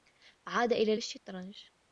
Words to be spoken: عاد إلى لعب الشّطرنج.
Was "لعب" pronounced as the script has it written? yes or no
no